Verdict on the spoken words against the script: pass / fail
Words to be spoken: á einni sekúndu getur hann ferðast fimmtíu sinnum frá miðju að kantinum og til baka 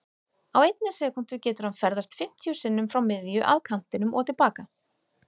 pass